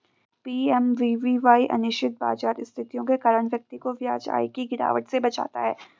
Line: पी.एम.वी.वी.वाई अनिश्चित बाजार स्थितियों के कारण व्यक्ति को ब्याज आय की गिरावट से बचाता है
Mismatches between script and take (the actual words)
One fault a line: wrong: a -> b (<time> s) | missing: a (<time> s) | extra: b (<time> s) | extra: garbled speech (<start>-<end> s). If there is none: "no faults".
no faults